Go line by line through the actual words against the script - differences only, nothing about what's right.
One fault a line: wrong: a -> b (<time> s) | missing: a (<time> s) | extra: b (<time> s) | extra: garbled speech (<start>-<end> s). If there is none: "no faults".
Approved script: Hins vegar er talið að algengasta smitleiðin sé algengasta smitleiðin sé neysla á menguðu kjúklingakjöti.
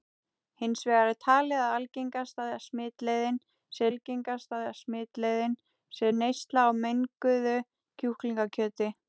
no faults